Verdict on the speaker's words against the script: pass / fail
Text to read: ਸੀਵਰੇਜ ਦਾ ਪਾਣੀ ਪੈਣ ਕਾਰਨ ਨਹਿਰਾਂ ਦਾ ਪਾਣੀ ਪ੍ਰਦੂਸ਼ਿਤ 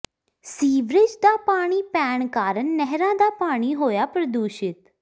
fail